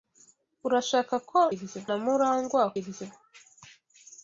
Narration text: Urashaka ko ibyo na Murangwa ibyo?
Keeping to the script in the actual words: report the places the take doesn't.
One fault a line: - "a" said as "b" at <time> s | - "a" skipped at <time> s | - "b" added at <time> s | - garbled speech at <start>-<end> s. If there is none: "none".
none